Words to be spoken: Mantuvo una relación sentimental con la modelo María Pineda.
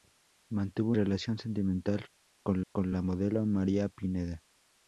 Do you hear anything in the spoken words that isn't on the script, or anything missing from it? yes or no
yes